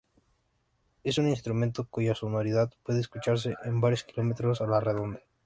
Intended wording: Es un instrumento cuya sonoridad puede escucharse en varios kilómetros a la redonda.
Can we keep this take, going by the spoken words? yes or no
yes